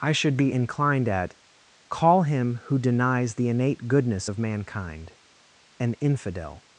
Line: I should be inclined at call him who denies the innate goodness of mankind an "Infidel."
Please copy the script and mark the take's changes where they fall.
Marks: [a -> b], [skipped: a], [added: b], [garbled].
I should be inclined at call him who denies the innate goodness of mankind an "Infidel."